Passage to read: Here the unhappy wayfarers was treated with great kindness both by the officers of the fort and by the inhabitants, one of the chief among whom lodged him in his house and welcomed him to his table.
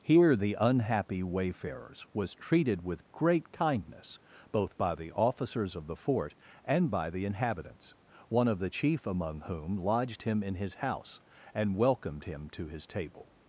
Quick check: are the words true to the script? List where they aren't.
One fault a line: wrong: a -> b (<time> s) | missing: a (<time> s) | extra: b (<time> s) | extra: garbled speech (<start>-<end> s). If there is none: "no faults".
no faults